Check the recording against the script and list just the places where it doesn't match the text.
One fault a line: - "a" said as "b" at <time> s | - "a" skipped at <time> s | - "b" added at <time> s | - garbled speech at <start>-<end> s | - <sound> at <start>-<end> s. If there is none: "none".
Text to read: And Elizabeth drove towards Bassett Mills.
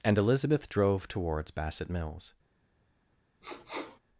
- sniff at 3.4-4.0 s